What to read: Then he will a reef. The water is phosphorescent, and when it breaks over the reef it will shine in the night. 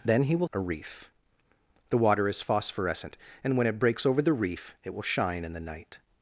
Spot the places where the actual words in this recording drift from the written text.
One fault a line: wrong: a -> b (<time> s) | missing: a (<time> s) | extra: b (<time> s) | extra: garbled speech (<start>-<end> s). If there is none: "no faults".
no faults